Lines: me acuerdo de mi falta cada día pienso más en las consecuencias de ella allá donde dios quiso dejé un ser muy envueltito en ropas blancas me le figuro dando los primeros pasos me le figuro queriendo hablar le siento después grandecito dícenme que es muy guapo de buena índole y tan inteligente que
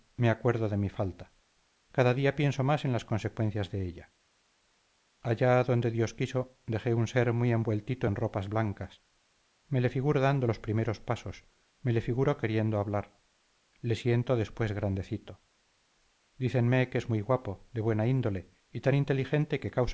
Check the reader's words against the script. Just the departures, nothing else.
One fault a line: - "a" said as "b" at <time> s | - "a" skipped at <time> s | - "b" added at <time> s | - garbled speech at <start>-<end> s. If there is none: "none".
none